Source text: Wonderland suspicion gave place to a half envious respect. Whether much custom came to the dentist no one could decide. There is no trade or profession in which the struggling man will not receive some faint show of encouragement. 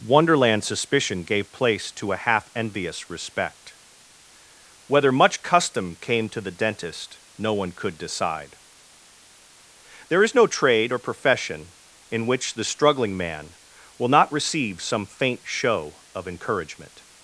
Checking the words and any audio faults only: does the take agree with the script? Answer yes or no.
yes